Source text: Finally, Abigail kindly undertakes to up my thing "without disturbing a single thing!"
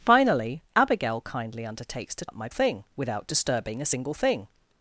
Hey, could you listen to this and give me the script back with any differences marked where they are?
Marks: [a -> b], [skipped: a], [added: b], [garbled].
Finally, Abigail kindly undertakes to up my thing "without disturbing a single thing!"